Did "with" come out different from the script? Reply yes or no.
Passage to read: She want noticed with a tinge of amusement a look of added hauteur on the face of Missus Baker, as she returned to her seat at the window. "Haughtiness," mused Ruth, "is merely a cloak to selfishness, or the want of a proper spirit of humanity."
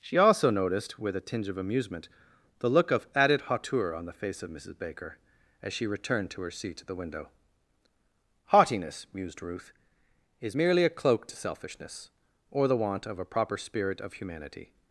no